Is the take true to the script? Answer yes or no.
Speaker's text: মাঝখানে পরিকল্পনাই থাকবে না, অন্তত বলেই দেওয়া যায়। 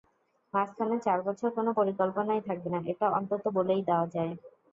no